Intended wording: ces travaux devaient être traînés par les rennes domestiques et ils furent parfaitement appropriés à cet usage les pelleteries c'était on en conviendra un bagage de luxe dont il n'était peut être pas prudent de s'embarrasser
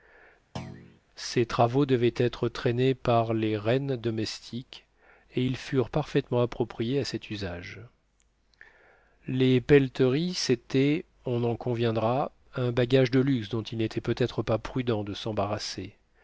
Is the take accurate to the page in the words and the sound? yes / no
no